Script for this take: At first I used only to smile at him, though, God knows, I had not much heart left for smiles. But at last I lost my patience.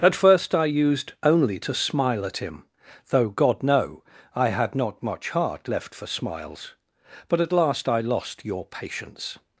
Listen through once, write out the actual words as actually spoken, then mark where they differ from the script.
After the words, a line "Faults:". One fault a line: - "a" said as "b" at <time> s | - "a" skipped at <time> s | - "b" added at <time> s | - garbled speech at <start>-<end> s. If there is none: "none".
At first I used only to smile at him, though, God know, I had not much heart left for smiles. But at last I lost your patience.
Faults:
- "knows" said as "know" at 3.6 s
- "my" said as "your" at 8.4 s